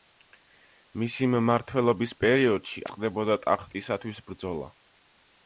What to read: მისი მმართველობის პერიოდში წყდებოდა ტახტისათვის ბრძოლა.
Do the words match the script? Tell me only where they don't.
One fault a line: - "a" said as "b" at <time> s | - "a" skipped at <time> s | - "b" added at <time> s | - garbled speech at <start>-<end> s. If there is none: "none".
none